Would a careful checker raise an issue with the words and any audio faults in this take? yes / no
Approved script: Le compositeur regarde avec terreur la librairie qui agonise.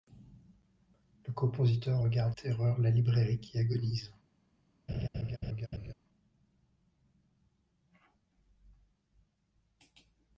yes